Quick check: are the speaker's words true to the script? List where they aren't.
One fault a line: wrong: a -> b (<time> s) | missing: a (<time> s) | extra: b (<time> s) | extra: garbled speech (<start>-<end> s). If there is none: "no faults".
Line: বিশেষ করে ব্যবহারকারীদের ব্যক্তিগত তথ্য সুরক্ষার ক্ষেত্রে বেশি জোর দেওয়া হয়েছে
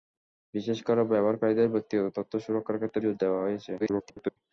missing: বেশি (3.0 s)
extra: garbled speech (3.8-4.4 s)